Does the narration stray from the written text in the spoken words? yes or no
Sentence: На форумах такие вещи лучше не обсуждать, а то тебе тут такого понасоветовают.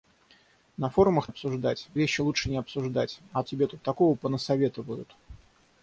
yes